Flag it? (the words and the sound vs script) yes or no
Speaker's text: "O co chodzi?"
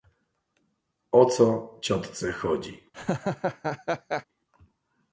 yes